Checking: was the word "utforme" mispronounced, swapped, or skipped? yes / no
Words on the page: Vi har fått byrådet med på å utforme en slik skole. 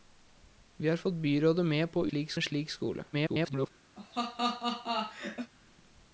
yes